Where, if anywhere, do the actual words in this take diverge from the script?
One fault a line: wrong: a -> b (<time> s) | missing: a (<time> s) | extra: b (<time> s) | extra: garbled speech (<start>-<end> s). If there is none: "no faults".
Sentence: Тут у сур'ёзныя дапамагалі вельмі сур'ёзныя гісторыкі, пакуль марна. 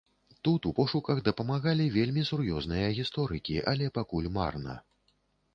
wrong: сур'ёзныя -> пошуках (0.8 s)
extra: але (3.7 s)